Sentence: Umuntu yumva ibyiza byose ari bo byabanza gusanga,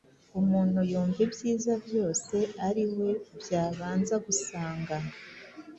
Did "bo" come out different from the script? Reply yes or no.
yes